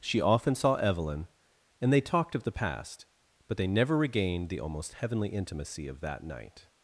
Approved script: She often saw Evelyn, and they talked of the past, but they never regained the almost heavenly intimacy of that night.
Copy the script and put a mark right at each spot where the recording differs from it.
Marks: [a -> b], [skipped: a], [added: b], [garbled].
She often saw Evelyn, and they talked of the past, but they never regained the almost heavenly intimacy of that night.